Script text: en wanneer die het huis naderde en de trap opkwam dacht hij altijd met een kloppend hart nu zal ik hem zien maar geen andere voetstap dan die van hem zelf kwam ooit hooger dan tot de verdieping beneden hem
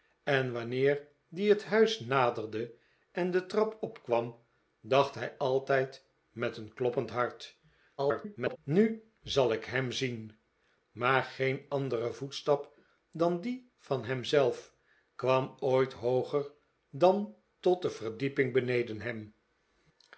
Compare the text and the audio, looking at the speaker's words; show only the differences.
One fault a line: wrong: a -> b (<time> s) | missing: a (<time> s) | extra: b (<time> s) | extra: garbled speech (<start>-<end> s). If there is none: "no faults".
extra: garbled speech (8.0-8.6 s)